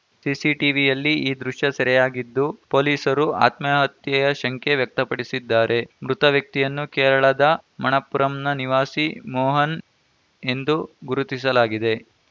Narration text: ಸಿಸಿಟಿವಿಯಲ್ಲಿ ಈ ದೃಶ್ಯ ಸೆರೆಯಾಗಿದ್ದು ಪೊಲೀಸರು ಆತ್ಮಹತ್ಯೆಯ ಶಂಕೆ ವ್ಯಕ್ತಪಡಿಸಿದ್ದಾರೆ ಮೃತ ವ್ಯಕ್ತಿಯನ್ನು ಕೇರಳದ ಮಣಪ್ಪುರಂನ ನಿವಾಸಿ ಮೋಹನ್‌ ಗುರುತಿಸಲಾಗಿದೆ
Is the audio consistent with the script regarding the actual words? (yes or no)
no